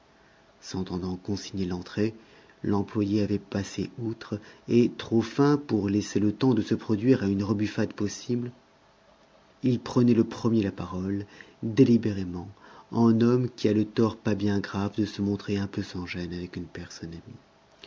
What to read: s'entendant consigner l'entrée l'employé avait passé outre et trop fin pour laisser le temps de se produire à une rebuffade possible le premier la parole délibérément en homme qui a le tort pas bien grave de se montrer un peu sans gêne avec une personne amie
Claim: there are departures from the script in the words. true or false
true